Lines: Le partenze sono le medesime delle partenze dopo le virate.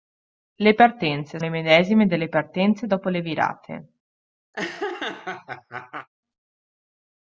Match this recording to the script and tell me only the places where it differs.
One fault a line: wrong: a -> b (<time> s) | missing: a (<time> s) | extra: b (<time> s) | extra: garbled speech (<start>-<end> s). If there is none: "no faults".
missing: sono (1.4 s)